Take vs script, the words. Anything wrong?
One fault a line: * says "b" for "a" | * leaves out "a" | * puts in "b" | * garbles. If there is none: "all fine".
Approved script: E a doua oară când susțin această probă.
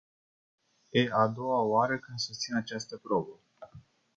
all fine